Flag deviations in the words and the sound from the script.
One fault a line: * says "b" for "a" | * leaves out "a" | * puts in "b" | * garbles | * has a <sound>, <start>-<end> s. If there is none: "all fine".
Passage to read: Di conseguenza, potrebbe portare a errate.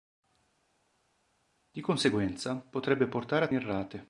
all fine